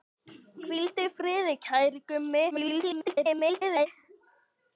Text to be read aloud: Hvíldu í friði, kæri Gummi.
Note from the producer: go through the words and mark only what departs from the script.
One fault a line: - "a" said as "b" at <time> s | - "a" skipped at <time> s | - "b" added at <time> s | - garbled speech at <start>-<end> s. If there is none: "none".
- garbled speech at 2.5-3.9 s